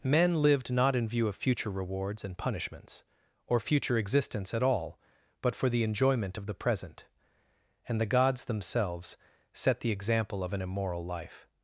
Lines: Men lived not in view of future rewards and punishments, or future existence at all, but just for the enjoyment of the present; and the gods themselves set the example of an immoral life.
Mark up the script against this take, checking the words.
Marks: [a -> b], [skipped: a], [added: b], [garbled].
Men lived not in view of future rewards and punishments, or future existence at all, but [skipped: just] for the enjoyment of the present; and the gods themselves set the example of an immoral life.